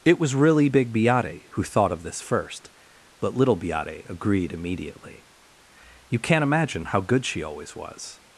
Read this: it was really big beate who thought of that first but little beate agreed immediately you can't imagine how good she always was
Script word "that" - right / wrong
wrong